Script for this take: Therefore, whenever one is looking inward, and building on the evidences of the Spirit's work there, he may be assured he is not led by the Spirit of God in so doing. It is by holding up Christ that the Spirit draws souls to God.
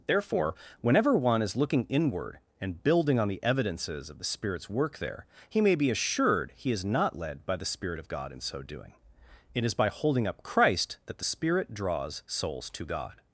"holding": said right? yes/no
yes